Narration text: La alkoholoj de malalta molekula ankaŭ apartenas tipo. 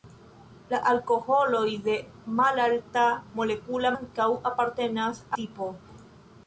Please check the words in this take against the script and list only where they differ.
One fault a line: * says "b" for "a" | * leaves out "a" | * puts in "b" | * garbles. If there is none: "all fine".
all fine